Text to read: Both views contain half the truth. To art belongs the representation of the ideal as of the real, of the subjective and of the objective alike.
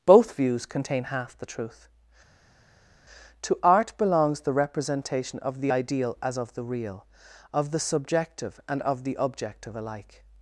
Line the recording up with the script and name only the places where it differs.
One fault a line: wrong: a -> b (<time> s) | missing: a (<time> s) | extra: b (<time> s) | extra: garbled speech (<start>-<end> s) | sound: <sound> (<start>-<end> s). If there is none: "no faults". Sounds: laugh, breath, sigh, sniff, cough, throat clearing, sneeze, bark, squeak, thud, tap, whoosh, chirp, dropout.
no faults